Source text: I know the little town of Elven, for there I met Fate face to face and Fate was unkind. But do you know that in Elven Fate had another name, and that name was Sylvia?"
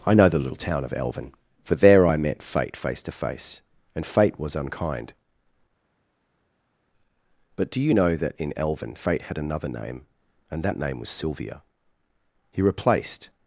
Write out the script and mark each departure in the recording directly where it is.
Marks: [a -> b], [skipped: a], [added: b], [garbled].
I know the little town of Elven, for there I met Fate face to face and Fate was unkind. But do you know that in Elven Fate had another name, and that name was Sylvia?" [added: He replaced]